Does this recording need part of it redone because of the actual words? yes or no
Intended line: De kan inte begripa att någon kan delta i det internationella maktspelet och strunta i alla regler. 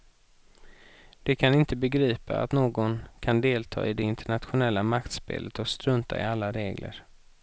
no